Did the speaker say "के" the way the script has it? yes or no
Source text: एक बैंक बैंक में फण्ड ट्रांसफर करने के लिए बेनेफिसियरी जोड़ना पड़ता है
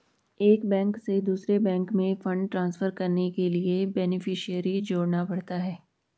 yes